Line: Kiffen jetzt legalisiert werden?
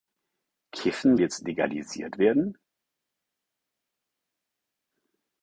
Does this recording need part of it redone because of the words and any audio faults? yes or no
no